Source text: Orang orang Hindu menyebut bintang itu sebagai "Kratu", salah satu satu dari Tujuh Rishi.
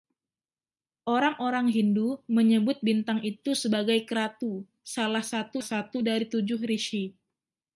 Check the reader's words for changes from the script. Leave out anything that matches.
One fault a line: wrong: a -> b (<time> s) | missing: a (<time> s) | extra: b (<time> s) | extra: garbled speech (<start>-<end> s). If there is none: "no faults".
no faults